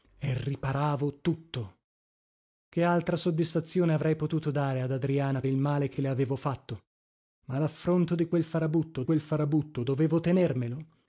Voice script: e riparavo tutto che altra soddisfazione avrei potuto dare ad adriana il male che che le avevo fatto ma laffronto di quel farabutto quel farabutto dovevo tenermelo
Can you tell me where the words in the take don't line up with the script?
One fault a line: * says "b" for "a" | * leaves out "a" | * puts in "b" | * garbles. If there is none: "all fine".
all fine